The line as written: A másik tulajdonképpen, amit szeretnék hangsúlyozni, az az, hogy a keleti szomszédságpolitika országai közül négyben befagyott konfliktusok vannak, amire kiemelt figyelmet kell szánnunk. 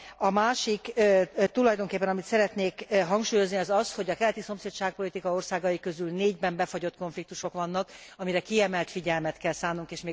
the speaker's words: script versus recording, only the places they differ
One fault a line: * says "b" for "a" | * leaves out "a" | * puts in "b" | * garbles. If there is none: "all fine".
all fine